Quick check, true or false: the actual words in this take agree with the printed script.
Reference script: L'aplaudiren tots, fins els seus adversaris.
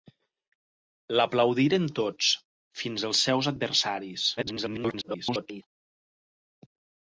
false